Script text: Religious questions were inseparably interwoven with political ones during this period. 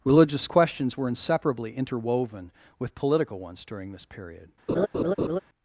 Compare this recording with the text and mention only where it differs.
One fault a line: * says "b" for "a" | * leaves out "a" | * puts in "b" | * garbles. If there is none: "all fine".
all fine